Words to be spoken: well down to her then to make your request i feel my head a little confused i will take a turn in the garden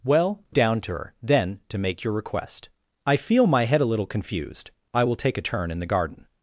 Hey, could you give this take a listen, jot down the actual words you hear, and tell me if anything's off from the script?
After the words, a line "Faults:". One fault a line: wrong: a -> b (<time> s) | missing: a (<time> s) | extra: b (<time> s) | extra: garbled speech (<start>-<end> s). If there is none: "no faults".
well down to her then to make your request i feel my head a little confused i will take a turn in the garden
Faults:
no faults